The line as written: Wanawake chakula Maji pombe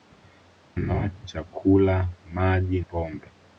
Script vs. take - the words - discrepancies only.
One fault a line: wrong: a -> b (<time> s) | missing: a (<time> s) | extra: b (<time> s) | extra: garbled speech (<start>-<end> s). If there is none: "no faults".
no faults